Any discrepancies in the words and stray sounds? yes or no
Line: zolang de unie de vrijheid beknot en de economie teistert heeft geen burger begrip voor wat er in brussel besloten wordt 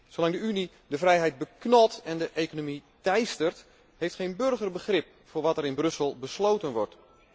no